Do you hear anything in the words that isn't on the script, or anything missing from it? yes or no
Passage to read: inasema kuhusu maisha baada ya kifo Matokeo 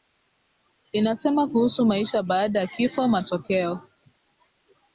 no